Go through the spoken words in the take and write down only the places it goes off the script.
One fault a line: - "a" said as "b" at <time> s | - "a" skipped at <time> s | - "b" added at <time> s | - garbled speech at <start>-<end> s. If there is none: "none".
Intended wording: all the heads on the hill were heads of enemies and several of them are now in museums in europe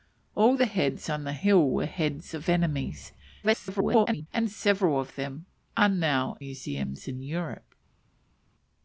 - garbled speech at 3.4-4.3 s
- "in" skipped at 6.4 s